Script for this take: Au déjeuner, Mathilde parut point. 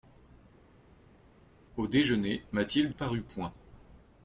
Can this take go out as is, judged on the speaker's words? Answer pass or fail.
pass